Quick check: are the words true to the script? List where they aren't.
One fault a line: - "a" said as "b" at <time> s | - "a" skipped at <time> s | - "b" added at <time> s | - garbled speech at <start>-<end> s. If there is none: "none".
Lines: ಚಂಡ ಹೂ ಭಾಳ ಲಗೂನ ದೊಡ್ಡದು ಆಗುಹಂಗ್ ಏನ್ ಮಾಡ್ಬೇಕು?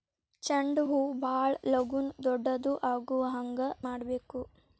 - "ಏನ್" skipped at 3.7 s